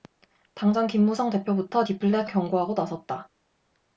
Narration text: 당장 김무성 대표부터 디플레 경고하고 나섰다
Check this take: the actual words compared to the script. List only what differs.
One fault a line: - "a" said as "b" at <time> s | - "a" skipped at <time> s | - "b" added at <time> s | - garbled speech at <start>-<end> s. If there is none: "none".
none